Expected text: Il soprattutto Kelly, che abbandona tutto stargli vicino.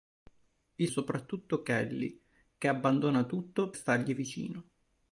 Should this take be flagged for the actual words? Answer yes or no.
no